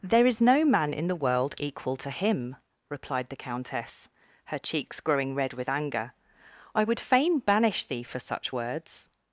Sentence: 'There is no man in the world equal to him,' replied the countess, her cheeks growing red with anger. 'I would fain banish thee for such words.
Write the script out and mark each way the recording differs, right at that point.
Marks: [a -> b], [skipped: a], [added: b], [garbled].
'There is no man in the world equal to him,' replied the countess, her cheeks growing red with anger. 'I would fain banish thee for such words.